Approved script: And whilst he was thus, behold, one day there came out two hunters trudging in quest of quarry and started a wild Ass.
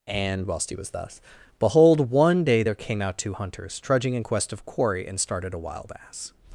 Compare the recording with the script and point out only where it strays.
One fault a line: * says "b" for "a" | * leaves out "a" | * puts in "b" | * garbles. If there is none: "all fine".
all fine